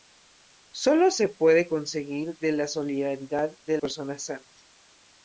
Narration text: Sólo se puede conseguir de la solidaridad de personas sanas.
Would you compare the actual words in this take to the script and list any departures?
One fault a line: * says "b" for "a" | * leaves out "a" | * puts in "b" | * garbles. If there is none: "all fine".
all fine